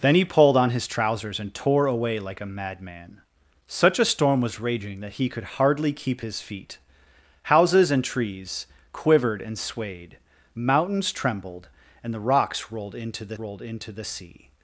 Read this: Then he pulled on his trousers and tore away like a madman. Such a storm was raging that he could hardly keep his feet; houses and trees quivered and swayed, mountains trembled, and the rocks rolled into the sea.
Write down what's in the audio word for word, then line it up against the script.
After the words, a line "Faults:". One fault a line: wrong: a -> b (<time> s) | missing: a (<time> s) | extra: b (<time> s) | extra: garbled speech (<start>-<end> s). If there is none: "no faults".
Then he pulled on his trousers and tore away like a madman. Such a storm was raging that he could hardly keep his feet; houses and trees quivered and swayed, mountains trembled, and the rocks rolled into the rolled into the sea.
Faults:
extra: rolled into the (13.4 s)